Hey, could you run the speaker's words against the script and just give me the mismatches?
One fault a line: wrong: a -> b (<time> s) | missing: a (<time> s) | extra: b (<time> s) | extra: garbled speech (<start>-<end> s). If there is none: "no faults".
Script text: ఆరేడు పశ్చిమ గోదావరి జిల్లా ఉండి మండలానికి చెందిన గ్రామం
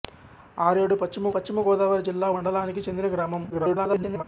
extra: పశ్చిమ (1.3 s)
missing: ఉండి (2.3 s)
extra: garbled speech (3.5-4.2 s)